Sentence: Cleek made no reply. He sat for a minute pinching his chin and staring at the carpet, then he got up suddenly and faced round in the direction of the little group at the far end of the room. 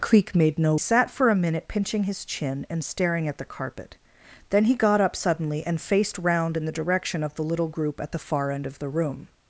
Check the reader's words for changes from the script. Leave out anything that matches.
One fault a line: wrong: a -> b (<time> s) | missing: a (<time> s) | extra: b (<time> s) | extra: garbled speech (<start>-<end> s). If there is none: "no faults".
missing: reply He (0.8 s)